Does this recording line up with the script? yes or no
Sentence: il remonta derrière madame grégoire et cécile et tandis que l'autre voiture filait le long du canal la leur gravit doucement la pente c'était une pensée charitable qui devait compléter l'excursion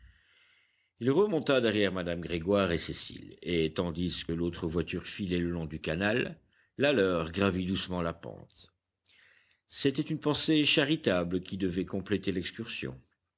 no